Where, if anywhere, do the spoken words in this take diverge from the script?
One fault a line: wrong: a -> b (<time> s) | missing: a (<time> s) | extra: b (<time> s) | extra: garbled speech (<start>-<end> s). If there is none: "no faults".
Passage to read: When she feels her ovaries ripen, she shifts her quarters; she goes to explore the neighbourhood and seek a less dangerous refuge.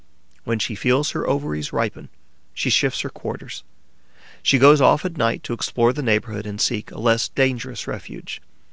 extra: off at night (4.8 s)